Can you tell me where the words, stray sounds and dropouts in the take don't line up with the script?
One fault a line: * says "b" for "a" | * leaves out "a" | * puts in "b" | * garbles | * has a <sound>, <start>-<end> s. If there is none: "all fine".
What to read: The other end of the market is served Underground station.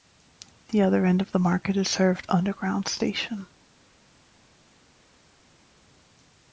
all fine